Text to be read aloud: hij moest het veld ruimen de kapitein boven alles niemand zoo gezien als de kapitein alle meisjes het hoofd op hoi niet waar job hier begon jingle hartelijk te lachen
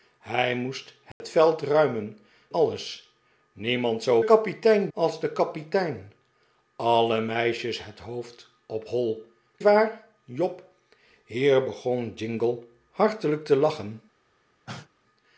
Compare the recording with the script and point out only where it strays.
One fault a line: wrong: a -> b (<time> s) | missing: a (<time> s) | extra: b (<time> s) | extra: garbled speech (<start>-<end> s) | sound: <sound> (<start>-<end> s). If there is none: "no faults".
sound: dropout (1.1-1.2 s)
missing: de kapitein boven (2.2 s)
wrong: gezien -> kapitein (4.2 s)
missing: niet (9.2 s)
sound: cough (14.7-14.9 s)